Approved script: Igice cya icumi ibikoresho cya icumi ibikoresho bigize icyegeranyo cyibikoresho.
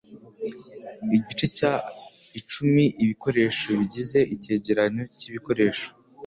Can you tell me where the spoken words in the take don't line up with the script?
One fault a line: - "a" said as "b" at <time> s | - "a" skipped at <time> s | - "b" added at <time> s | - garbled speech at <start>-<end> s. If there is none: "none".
- "cya icumi ibikoresho" skipped at 3.7 s